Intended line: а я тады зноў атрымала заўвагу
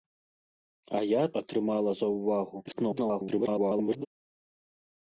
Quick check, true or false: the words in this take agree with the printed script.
false